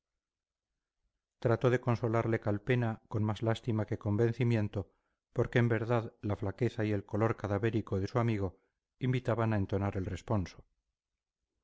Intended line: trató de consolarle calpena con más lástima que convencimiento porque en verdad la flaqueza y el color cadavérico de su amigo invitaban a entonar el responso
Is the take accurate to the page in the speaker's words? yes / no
yes